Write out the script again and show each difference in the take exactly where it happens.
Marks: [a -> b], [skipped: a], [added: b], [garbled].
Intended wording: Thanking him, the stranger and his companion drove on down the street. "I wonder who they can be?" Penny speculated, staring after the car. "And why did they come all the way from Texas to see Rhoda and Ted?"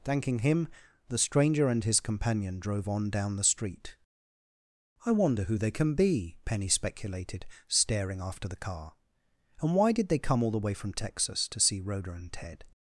Thanking him, the stranger and his companion drove on down the street. "I wonder who they can be?" Penny speculated, staring after the car. "And why did they come all the way from Texas to see Rhoda and Ted?"